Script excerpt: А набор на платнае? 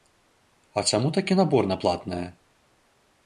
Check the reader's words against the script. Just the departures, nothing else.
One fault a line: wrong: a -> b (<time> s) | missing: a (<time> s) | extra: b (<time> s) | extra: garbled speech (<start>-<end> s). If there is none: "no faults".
extra: чаму такі (0.9 s)